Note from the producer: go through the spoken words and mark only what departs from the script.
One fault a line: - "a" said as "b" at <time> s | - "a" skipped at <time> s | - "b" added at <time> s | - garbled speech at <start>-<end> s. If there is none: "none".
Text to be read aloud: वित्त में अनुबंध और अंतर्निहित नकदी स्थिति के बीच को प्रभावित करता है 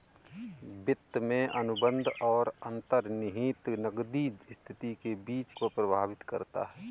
none